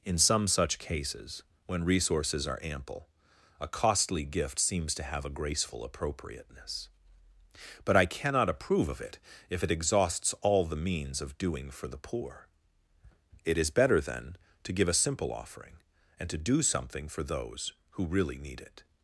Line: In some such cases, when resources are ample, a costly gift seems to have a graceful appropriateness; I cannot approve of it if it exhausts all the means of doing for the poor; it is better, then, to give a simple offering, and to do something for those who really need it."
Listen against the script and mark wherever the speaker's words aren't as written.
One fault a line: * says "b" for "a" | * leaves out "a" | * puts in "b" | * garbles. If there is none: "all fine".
* puts in "but"